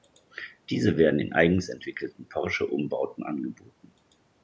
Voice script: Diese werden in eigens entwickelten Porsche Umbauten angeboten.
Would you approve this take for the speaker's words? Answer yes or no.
yes